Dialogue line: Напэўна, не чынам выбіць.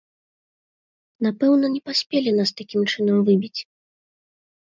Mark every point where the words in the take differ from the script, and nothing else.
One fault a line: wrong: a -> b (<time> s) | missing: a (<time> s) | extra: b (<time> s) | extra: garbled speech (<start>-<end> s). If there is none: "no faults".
extra: паспелі нас такім (1.9 s)